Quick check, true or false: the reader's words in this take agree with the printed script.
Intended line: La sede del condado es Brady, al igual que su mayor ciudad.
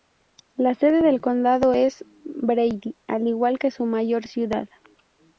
true